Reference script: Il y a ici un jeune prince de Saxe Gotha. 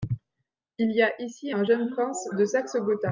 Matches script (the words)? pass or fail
pass